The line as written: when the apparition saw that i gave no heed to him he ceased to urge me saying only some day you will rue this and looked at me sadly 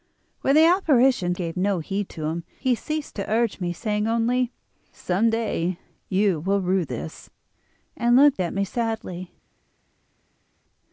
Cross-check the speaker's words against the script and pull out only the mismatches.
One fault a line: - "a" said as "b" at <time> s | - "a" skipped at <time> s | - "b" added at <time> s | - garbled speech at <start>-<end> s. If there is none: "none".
- "saw that i" skipped at 1.4 s